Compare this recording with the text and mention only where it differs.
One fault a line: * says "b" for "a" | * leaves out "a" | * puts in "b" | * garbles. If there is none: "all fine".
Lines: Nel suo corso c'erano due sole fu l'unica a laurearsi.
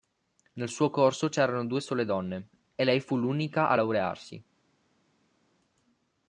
* puts in "donne e lei"